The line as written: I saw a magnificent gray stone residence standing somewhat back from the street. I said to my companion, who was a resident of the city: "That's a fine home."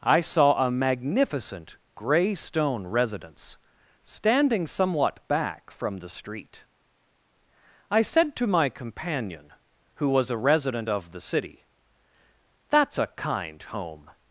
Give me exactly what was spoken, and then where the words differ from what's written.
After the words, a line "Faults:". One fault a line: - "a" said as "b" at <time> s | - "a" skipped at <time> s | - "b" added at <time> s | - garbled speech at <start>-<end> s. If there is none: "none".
I saw a magnificent gray stone residence standing somewhat back from the street. I said to my companion, who was a resident of the city: "That's a kind home."
Faults:
- "fine" said as "kind" at 13.1 s